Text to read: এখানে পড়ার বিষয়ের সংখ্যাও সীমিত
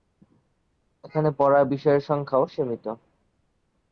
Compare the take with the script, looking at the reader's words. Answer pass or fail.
pass